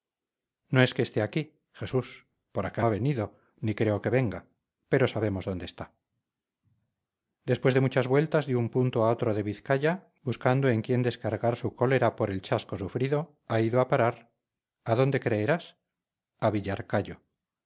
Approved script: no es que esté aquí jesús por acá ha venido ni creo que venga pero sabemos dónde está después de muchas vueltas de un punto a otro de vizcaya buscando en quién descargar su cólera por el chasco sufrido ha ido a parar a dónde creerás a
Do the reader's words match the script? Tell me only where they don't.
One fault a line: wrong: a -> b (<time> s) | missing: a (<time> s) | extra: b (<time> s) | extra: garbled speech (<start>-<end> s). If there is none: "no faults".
no faults